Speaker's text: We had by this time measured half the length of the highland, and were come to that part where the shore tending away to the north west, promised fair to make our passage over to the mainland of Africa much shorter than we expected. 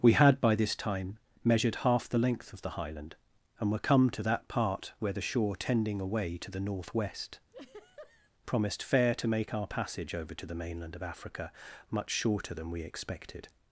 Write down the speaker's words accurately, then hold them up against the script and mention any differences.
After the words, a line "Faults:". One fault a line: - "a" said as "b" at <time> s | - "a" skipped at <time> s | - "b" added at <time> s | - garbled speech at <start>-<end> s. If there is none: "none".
We had by this time measured half the length of the highland, and were come to that part where the shore tending away to the north west, promised fair to make our passage over to the mainland of Africa much shorter than we expected.
Faults:
none